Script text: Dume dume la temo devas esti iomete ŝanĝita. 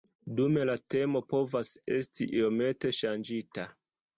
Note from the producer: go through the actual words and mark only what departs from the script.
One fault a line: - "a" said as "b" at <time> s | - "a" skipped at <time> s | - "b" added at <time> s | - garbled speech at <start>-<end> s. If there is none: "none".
- "dume" skipped at 0.6 s
- "devas" said as "povas" at 1.4 s